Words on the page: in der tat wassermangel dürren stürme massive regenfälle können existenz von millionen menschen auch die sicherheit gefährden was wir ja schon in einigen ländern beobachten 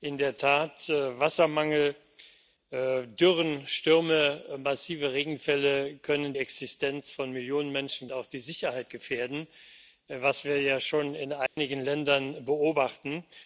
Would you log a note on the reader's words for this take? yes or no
no